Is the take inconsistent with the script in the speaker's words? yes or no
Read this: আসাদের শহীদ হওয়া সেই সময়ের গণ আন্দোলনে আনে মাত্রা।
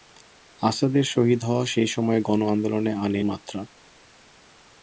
no